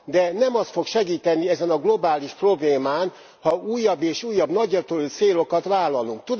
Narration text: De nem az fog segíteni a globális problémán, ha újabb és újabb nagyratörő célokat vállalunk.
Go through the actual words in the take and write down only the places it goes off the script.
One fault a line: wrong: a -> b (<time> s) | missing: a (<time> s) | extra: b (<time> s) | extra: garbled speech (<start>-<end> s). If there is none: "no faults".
extra: ezen (1.5 s)